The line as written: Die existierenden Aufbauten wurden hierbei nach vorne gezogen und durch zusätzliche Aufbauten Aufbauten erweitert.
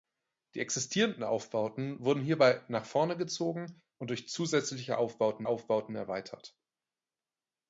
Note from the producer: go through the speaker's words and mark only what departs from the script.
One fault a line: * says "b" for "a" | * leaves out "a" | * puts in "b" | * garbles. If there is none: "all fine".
all fine